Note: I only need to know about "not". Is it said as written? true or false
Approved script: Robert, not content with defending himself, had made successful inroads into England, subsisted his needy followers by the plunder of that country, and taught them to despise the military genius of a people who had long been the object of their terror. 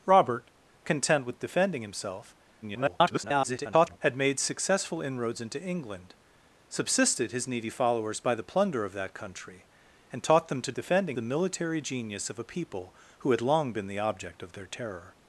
false